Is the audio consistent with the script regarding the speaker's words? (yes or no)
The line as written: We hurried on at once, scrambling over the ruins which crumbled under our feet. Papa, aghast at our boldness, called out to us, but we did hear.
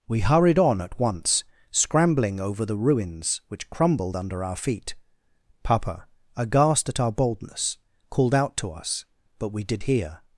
yes